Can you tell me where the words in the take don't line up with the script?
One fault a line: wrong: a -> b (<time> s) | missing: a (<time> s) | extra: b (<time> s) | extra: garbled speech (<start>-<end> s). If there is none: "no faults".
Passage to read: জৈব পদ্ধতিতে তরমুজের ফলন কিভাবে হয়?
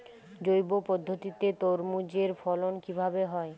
no faults